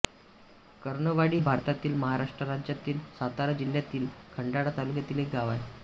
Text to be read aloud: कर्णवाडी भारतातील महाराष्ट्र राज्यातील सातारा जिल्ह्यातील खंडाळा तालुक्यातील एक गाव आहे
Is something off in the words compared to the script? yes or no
no